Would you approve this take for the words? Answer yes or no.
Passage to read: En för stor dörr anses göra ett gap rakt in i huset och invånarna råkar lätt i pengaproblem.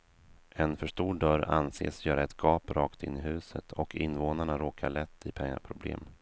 yes